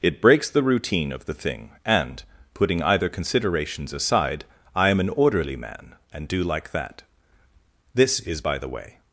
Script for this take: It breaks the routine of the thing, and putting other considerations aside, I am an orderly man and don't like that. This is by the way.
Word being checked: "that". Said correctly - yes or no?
yes